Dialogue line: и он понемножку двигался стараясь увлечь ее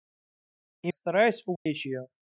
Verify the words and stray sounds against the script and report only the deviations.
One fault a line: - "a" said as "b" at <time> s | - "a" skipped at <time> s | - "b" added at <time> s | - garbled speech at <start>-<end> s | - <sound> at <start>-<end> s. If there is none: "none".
- "он понемножку двигался" skipped at 0.9 s
- dropout at 1.6-1.7 s